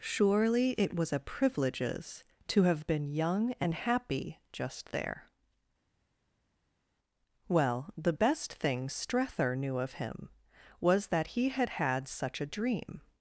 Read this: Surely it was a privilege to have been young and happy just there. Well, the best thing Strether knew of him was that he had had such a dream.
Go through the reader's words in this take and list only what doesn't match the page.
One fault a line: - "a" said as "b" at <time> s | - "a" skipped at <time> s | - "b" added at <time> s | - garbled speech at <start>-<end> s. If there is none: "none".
- "privilege" said as "privileges" at 1.2 s